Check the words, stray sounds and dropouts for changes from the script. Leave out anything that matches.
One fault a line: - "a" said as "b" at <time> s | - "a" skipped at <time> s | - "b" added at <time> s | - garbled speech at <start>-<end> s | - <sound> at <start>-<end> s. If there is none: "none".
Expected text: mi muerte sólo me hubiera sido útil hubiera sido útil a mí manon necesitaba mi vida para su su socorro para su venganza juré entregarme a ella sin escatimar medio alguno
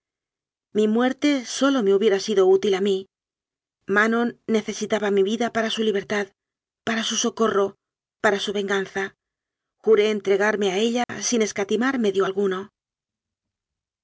- "hubiera sido útil" skipped at 2.7 s
- "libertad para" added at 5.8 s
- dropout at 11.0-11.1 s